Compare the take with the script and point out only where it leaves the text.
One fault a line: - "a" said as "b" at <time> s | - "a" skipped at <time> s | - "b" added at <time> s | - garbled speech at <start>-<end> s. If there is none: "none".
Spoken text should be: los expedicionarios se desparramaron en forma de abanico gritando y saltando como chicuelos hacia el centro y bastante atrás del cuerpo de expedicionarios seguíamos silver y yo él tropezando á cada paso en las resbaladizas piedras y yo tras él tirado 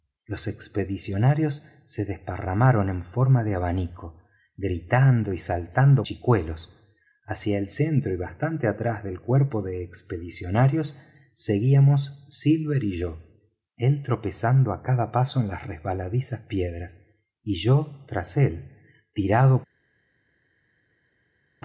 - "como" skipped at 6.1 s